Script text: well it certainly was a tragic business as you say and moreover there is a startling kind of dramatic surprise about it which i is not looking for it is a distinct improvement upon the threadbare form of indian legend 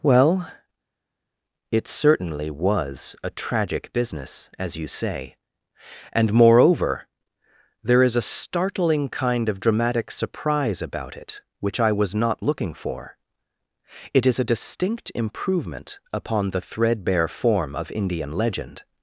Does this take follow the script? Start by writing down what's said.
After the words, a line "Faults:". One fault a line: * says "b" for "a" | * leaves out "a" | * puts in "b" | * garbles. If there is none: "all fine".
well it certainly was a tragic business as you say and moreover there is a startling kind of dramatic surprise about it which i was not looking for it is a distinct improvement upon the threadbare form of indian legend
Faults:
* says "was" for "is"